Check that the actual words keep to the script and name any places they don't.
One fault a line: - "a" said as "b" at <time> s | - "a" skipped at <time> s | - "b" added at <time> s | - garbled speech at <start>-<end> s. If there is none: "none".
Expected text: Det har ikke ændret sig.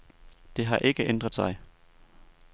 none